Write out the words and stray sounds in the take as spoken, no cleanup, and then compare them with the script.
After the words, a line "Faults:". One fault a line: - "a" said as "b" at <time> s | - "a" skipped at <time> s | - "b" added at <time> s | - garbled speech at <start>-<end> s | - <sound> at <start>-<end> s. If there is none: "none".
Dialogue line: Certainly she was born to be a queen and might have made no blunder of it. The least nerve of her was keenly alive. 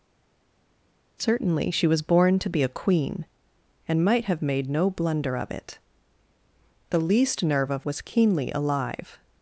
Certainly she was born to be a queen and might have made no blunder of it. The least nerve of was keenly alive.
Faults:
- "her" skipped at 7.9 s